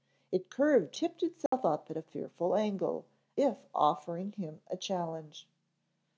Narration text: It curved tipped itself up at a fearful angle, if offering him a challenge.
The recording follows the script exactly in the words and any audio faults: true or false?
false